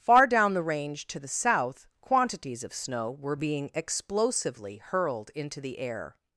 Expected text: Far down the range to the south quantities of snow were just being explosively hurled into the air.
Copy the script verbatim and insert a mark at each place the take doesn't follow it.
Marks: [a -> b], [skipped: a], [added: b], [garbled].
Far down the range to the south quantities of snow were [skipped: just] being explosively hurled into the air.